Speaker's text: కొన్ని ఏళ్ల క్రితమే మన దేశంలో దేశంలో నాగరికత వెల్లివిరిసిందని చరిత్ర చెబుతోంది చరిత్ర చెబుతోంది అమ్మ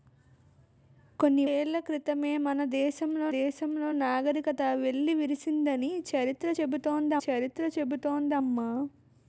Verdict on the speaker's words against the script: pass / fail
pass